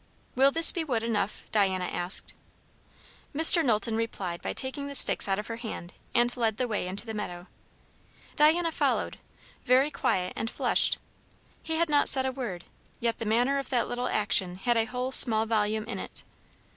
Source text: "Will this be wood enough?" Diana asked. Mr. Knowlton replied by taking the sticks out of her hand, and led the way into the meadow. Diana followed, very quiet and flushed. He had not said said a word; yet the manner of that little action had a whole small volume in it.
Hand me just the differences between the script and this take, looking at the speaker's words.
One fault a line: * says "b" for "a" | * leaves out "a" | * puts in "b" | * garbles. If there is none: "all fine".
* leaves out "said"